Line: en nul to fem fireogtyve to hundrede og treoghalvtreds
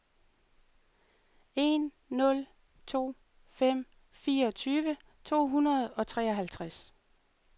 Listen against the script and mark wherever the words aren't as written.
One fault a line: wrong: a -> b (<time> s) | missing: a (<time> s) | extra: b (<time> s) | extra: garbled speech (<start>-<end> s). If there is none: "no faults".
no faults